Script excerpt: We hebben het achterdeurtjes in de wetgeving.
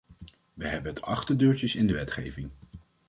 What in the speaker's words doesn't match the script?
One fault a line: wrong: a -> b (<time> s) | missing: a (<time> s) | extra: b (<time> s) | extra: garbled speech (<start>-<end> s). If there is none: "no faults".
no faults